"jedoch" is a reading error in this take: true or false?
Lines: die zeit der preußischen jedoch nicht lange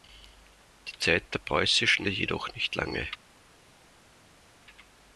false